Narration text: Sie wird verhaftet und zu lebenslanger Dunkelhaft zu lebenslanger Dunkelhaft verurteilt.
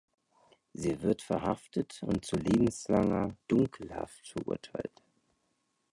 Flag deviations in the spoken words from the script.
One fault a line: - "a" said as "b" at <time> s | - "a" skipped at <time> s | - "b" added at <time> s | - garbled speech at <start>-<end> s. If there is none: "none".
- "zu lebenslanger Dunkelhaft" skipped at 4.3 s